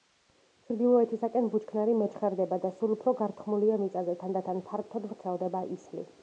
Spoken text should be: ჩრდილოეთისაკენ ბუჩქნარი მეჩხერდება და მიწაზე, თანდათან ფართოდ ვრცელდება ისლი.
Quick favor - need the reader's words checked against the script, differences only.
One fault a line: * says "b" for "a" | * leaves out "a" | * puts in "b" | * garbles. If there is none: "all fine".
* puts in "სულ უფრო გართხმულია"